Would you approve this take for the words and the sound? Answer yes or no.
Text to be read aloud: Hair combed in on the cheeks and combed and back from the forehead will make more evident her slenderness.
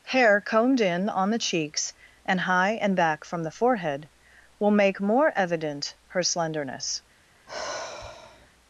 no